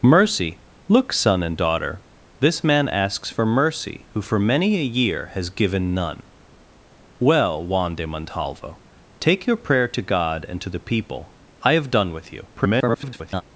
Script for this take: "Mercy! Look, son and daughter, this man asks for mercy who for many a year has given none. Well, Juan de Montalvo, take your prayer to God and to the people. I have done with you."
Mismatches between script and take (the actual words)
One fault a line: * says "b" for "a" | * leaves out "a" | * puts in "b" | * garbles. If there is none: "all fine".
* garbles